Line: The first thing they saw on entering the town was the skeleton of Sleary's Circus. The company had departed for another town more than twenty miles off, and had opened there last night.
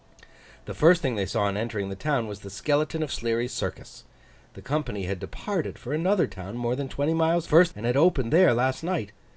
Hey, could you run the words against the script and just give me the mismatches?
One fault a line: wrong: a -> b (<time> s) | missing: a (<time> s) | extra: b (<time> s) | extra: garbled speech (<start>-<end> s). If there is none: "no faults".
wrong: off -> first (7.4 s)